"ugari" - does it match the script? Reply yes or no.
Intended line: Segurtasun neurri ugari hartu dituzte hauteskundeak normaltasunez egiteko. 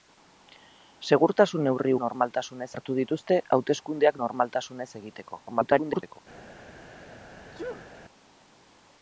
no